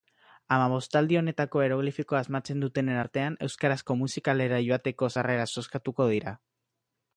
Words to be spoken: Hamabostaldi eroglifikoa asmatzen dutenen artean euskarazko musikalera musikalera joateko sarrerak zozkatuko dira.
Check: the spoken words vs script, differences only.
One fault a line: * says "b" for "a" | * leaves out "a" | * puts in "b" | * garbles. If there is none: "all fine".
* puts in "honetako"
* leaves out "musikalera"